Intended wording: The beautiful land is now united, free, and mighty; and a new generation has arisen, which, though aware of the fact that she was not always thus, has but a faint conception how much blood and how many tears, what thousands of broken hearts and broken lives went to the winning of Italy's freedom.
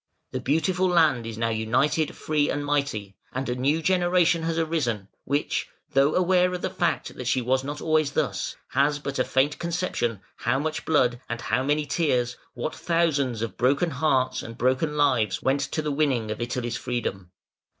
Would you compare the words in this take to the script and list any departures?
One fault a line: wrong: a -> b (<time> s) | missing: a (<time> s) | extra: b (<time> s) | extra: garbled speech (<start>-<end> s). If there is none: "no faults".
no faults